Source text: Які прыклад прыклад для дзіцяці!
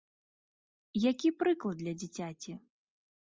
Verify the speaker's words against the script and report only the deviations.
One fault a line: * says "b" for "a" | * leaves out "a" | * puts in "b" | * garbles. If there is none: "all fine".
* leaves out "прыклад"